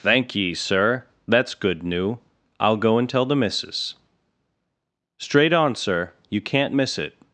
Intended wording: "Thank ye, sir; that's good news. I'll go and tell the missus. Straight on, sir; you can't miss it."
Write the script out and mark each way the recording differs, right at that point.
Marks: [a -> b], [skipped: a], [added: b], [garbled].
"Thank ye, sir; that's good [news. -> new] I'll go and tell the missus. Straight on, sir; you can't miss it."